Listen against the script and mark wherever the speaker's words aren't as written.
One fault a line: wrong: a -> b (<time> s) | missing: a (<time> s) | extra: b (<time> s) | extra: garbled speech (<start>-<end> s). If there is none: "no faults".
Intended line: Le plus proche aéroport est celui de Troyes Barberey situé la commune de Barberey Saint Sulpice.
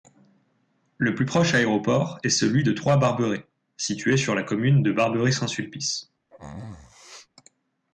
extra: sur (4.2 s)